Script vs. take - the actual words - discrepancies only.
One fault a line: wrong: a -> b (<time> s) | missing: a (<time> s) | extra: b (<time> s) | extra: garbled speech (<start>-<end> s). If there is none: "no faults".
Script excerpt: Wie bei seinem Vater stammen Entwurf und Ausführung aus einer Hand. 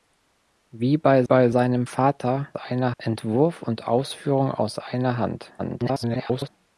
extra: bei (1.2 s)
wrong: stammen -> einer (2.5 s)
extra: garbled speech (5.6-6.5 s)